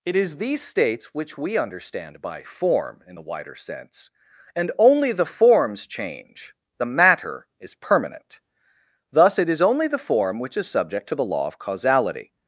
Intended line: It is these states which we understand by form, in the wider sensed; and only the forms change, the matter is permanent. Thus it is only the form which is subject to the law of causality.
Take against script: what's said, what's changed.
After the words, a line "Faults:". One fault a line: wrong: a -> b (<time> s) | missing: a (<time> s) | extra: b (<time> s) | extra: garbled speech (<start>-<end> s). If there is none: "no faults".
It is these states which we understand by form, in the wider sense; and only the forms change, the matter is permanent. Thus it is only the form which is subject to the law of causality.
Faults:
wrong: sensed -> sense (3.5 s)